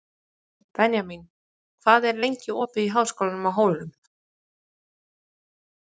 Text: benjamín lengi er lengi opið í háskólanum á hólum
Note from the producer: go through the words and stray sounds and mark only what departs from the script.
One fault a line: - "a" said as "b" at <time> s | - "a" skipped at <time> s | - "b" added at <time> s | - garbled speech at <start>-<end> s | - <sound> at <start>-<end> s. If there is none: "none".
- "lengi" said as "hvað" at 1.9 s